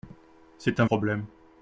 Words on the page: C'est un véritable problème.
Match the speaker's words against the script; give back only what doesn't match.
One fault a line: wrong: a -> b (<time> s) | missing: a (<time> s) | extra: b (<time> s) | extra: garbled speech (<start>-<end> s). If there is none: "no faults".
missing: véritable (0.8 s)